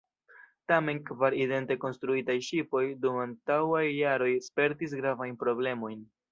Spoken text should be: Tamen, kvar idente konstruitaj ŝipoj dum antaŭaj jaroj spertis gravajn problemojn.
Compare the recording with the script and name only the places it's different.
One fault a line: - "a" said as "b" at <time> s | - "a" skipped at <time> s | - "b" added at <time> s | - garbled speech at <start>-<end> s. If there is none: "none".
none